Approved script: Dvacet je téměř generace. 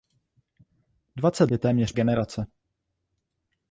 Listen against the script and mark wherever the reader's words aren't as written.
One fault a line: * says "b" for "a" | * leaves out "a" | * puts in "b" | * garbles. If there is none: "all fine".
all fine